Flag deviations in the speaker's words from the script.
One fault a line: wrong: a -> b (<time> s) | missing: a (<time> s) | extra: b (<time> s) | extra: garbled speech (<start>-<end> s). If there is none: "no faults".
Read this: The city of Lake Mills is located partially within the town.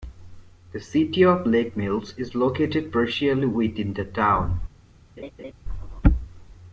no faults